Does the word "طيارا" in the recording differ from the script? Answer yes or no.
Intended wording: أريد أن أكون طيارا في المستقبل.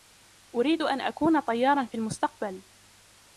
no